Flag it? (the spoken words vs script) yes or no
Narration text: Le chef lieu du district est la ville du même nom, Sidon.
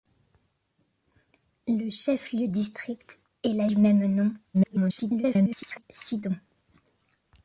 yes